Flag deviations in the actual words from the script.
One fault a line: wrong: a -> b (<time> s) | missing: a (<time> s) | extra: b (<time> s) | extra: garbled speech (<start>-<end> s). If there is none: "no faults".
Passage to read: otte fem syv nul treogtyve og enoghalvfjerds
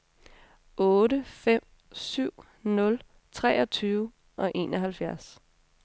no faults